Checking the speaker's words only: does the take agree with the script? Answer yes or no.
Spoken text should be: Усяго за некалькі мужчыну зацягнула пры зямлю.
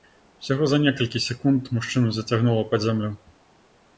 no